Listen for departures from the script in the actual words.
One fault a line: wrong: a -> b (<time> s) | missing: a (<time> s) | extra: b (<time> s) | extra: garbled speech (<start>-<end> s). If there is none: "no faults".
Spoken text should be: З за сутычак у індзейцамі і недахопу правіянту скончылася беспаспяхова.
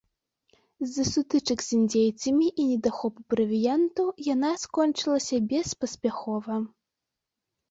wrong: у -> з (1.6 s)
extra: яна (4.3 s)